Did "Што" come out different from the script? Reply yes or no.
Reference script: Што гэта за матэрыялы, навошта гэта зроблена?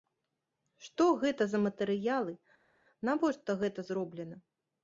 no